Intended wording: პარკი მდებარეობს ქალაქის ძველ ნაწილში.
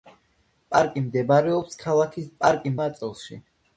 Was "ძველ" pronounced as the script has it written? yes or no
no